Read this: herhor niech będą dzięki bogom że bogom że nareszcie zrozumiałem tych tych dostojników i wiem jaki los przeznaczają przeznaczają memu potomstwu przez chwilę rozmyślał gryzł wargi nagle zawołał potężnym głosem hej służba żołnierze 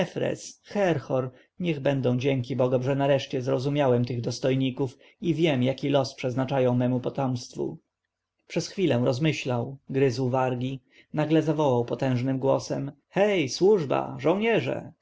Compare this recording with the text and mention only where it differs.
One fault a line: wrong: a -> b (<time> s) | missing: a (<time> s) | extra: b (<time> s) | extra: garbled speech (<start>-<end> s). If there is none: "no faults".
missing: bogom że (3.0 s)
missing: tych (4.2 s)
missing: przeznaczają (6.8 s)